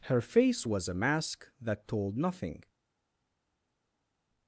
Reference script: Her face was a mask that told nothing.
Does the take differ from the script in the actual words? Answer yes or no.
no